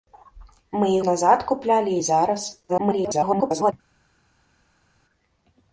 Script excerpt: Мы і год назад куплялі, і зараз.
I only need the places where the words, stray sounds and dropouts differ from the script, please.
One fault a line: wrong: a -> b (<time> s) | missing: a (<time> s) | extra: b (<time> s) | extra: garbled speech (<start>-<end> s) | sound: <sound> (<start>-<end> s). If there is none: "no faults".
missing: год (1.0 s)
extra: garbled speech (2.7-3.7 s)